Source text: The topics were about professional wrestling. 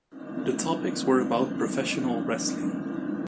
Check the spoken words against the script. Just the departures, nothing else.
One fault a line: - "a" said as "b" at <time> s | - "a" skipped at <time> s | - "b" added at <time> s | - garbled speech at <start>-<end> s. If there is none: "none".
none